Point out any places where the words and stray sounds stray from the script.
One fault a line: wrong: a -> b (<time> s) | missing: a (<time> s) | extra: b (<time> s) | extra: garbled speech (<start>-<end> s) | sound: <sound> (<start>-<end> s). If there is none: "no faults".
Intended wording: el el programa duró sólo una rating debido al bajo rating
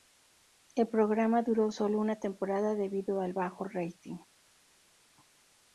missing: el (0.9 s)
wrong: rating -> temporada (2.2 s)